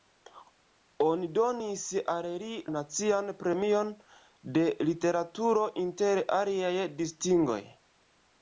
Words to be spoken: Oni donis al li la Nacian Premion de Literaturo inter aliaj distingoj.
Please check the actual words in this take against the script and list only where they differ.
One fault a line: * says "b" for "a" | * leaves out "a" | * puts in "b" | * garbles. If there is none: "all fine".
* leaves out "la"